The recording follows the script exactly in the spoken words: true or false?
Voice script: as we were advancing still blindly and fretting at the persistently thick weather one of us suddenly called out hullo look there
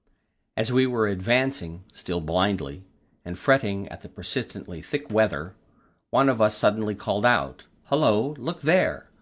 true